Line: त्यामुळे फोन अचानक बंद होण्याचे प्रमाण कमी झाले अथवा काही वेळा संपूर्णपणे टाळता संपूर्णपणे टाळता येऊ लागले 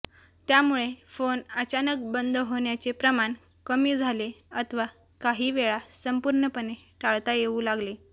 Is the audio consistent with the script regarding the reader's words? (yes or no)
no